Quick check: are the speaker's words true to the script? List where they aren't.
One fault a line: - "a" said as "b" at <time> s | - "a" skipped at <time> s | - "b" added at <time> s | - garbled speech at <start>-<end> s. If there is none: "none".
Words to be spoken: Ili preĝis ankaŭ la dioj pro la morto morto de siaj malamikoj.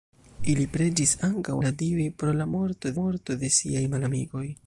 none